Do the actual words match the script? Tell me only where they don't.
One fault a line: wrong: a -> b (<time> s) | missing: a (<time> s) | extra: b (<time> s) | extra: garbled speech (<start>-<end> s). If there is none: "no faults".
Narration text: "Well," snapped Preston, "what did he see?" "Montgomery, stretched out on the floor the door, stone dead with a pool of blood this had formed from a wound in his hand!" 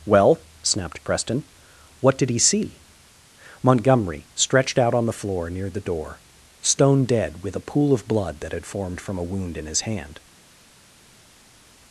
extra: near (5.5 s)
wrong: this -> that (8.4 s)